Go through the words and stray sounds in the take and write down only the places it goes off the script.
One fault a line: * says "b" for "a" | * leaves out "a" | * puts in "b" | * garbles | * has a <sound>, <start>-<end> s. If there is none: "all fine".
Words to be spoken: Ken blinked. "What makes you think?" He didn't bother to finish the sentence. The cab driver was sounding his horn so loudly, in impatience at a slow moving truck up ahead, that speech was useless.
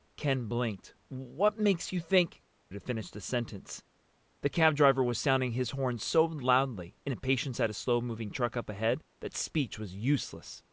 * leaves out "He didn't bother"